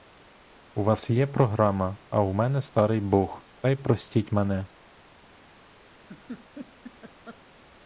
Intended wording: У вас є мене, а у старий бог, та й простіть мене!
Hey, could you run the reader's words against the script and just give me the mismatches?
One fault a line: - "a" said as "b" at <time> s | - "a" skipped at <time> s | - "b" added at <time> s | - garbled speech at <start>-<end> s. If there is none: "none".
- "мене" said as "програма" at 1.3 s
- "мене" added at 2.3 s